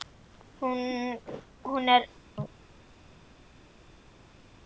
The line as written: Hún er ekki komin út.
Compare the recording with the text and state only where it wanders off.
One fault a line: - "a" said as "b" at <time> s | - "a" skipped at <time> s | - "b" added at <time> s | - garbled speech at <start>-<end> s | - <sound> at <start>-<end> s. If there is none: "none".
- "ekki komin" skipped at 2.0 s